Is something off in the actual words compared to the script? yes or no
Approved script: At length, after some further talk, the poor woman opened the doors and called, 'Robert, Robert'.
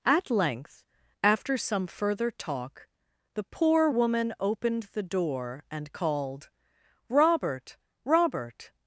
yes